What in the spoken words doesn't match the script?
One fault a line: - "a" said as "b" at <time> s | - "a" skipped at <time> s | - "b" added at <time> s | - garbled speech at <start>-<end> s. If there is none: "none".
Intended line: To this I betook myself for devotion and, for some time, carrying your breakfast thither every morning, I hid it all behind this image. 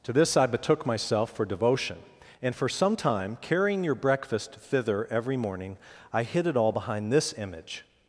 none